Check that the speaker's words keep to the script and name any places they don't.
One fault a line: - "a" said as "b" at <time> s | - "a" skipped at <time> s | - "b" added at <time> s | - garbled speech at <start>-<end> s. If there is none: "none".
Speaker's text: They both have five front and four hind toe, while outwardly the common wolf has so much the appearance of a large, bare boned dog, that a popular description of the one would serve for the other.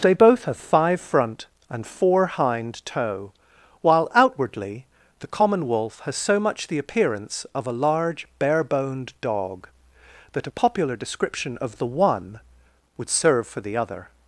none